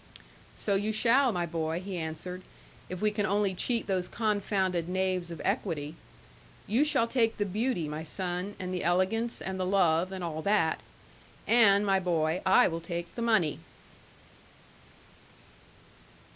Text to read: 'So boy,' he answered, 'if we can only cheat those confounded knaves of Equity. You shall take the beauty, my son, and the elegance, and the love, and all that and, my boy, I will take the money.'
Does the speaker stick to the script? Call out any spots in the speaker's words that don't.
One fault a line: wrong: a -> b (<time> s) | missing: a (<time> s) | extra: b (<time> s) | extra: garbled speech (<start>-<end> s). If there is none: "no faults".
extra: you shall my (0.7 s)